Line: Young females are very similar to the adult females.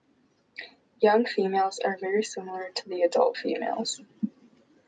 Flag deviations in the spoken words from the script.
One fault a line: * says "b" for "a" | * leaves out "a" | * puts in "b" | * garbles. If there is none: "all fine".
all fine